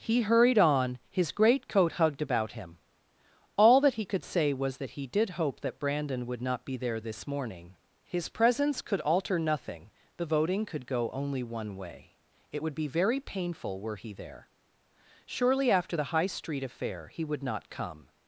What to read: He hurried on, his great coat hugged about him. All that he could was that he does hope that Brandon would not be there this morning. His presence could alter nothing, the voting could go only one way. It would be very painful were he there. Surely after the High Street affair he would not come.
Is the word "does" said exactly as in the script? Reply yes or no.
no